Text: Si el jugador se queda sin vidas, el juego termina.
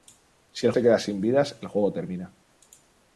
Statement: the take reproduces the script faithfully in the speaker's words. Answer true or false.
false